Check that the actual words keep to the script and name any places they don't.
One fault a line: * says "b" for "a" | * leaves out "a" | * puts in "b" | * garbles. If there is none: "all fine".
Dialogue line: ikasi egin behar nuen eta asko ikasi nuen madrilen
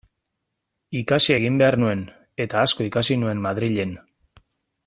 all fine